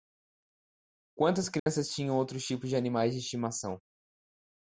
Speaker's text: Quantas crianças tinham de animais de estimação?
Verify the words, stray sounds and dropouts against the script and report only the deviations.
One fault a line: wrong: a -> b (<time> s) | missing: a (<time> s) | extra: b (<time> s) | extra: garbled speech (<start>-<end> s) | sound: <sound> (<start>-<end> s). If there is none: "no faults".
sound: dropout (1.6-1.7 s)
extra: outros tipos (2.2 s)